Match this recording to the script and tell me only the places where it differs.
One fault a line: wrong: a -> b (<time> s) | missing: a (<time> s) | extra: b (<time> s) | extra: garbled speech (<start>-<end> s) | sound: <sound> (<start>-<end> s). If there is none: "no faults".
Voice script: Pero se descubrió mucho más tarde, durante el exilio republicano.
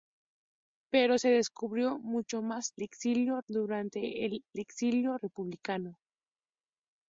wrong: tarde -> exilio (2.8 s)